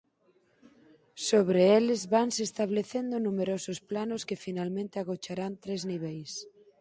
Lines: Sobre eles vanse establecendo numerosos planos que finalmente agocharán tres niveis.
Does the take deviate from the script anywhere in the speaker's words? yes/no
no